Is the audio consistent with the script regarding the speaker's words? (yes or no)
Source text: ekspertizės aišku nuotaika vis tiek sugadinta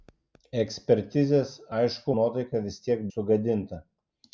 yes